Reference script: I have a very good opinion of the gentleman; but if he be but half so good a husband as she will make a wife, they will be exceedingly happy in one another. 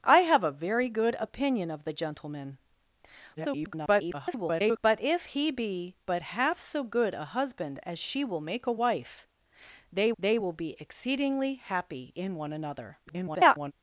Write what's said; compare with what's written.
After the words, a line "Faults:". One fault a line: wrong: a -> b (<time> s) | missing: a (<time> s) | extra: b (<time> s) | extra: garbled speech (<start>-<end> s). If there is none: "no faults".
I have a very good opinion of the gentleman; [garbled] but if he be but half so good a husband as she will make a wife, they they will be exceedingly happy in one another. [garbled]
Faults:
extra: garbled speech (3.4-4.8 s)
extra: they (10.2 s)
extra: garbled speech (13.1-13.7 s)